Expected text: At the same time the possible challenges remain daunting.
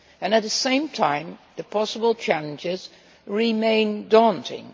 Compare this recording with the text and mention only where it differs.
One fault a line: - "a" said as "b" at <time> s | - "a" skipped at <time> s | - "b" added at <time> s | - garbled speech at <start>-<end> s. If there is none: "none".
none